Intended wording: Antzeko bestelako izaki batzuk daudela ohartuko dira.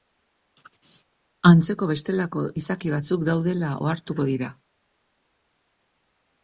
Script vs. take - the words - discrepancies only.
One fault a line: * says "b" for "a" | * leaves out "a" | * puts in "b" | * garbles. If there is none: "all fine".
all fine